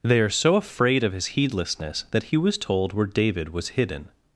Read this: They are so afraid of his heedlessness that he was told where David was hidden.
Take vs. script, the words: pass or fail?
pass